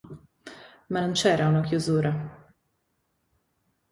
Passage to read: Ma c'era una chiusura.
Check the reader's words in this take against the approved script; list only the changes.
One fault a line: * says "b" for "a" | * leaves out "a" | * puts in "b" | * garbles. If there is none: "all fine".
* puts in "non"